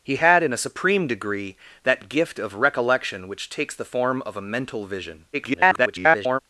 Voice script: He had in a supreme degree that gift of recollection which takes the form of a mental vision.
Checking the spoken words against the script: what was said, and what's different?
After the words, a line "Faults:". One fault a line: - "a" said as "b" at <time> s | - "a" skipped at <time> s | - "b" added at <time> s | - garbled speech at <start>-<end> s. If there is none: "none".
He had in a supreme degree that gift of recollection which takes the form of a mental vision. [garbled]
Faults:
- garbled speech at 5.3-6.4 s